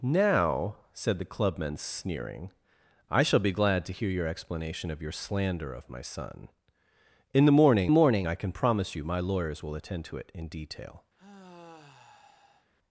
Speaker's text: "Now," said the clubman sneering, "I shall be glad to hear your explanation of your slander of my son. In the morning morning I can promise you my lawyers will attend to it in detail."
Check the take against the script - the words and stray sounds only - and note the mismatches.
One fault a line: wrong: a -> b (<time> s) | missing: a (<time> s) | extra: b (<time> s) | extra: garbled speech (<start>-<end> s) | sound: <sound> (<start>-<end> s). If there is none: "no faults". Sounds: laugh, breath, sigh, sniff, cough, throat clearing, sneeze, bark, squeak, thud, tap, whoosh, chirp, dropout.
sound: sigh (11.2-12.7 s)